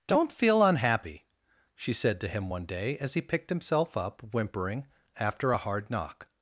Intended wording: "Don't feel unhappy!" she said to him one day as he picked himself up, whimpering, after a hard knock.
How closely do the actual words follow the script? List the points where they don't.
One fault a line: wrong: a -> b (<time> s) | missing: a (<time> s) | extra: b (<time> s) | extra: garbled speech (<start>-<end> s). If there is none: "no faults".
no faults